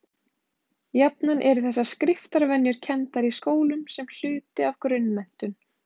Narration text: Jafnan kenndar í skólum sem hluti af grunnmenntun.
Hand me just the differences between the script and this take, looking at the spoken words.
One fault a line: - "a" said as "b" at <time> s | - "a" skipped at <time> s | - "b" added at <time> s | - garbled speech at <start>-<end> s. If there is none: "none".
- "eru þessar skriftarvenjur" added at 1.5 s